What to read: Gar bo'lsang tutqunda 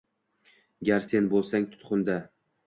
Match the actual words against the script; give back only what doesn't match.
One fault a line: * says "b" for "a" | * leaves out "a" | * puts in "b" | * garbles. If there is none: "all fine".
* puts in "sen"